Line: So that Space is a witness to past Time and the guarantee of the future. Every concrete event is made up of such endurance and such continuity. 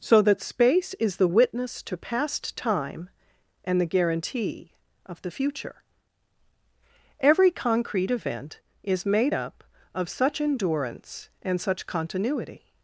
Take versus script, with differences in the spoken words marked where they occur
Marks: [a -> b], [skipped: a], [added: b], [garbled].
So that Space is [a -> the] witness to past Time and the guarantee of the future. Every concrete event is made up of such endurance and such continuity.